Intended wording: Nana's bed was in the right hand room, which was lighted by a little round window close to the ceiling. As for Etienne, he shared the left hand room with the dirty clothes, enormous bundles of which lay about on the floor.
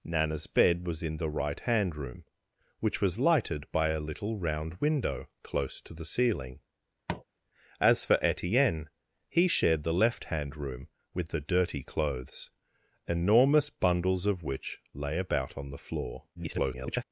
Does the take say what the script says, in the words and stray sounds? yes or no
no